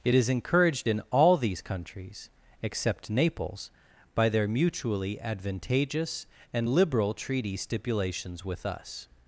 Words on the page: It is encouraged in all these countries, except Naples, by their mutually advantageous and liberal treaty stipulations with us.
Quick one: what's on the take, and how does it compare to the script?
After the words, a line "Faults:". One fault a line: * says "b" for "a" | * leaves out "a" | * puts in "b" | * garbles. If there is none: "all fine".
It is encouraged in all these countries, except Naples, by their mutually advantageous and liberal treaty stipulations with us.
Faults:
all fine